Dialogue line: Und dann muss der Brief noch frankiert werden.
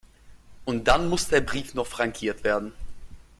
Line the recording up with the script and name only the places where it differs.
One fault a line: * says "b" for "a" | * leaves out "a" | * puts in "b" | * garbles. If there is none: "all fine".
all fine